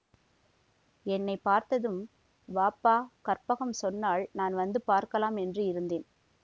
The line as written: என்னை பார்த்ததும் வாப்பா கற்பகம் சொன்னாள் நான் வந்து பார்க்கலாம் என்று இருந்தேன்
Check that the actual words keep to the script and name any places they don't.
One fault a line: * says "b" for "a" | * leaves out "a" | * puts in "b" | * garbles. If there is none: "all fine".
all fine